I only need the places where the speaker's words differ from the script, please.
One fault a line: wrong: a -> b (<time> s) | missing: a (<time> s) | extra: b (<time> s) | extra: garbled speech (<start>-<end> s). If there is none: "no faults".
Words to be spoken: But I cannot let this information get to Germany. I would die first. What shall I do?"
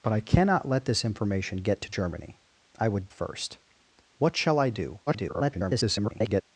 missing: die (3.1 s)
extra: garbled speech (5.1-6.4 s)